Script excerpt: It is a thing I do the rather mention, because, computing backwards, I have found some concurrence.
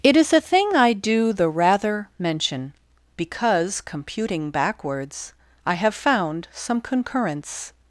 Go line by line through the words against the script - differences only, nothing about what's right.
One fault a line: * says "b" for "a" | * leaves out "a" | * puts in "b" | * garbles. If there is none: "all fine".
all fine